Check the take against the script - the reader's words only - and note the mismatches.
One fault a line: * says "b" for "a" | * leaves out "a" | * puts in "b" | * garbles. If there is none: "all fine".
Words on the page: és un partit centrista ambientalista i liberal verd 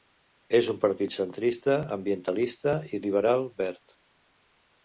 all fine